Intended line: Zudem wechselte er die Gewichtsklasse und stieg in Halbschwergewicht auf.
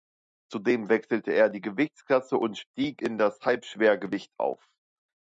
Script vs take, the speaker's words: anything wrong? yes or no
yes